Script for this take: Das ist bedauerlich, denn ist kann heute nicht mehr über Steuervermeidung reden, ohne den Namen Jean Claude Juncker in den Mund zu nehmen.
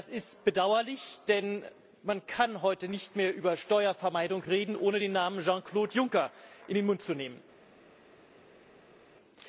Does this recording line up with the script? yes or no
no